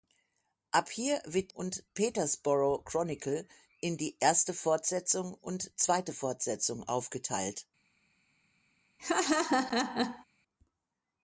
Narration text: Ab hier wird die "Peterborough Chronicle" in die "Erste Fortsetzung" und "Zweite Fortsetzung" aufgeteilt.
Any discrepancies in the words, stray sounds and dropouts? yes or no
yes